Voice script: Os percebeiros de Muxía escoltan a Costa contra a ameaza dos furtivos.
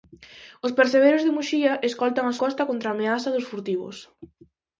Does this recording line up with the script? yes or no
yes